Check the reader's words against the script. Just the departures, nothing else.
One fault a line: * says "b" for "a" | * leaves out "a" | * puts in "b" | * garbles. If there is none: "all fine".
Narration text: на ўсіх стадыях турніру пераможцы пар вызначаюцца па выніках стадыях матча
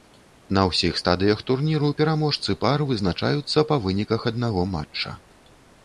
* says "аднаго" for "стадыях"